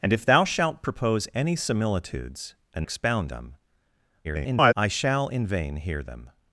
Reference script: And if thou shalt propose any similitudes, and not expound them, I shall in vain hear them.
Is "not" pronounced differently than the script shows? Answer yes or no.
yes